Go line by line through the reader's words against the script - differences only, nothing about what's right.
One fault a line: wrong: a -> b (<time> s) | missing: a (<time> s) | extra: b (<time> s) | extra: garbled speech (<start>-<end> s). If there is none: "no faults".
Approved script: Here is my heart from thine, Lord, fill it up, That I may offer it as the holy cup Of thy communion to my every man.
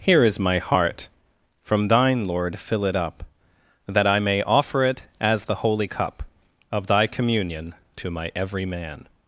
no faults